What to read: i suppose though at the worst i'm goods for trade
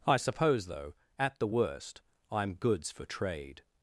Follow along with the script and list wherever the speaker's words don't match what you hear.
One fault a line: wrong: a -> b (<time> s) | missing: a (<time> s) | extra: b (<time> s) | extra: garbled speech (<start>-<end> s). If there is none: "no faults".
no faults